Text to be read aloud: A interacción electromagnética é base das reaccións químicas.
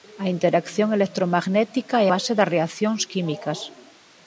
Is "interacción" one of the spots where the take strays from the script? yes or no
no